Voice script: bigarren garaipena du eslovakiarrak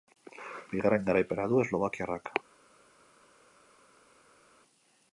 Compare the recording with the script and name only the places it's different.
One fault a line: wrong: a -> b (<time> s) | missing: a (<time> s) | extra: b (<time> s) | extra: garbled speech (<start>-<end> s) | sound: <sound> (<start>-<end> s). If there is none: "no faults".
no faults